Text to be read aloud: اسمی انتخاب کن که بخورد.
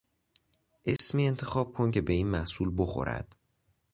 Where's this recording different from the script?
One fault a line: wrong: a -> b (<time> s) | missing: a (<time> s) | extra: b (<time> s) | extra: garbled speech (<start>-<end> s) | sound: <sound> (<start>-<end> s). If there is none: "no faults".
sound: dropout (1.0-1.0 s)
extra: به این محصول (2.0 s)